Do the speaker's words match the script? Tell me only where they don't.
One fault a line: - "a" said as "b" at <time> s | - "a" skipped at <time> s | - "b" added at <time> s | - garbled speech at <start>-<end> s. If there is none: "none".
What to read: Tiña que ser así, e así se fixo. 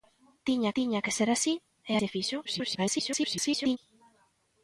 - "tiña" added at 0.8 s
- "así" skipped at 1.9 s
- garbled speech at 2.4-3.8 s